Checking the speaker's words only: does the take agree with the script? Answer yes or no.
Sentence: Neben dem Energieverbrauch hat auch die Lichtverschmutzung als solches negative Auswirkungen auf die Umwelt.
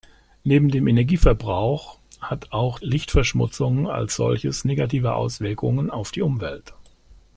no